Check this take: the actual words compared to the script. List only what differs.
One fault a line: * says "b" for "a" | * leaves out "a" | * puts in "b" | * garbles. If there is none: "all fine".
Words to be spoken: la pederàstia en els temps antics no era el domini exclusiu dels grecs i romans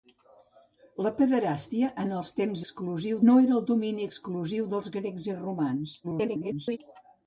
* says "exclusiu" for "antics"
* garbles